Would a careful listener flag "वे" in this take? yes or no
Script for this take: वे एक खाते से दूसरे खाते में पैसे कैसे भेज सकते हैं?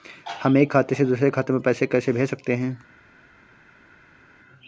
yes